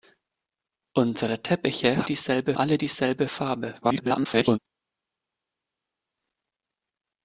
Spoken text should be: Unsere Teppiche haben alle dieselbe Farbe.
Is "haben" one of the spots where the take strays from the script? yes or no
yes